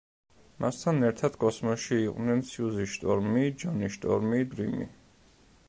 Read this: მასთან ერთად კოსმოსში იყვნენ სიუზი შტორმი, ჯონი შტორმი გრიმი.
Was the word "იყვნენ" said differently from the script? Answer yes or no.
no